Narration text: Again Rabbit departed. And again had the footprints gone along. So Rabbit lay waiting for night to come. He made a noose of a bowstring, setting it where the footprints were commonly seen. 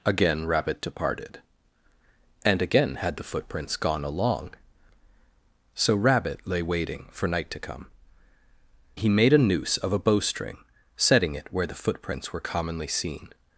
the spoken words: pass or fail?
pass